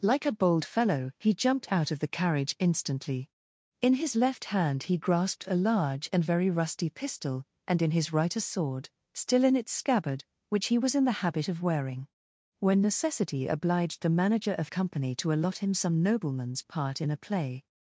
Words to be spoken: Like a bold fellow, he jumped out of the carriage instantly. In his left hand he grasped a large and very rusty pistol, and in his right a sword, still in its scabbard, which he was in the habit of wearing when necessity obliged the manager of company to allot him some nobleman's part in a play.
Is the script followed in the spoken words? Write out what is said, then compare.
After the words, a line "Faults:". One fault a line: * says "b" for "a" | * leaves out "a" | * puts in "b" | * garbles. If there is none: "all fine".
Like a bold fellow, he jumped out of the carriage instantly. In his left hand he grasped a large and very rusty pistol, and in his right a sword, still in its scabbard, which he was in the habit of wearing when necessity obliged the manager of company to allot him some nobleman's part in a play.
Faults:
all fine